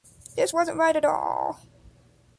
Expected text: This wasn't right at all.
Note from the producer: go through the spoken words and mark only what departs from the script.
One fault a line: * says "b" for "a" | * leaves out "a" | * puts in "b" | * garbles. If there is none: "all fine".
all fine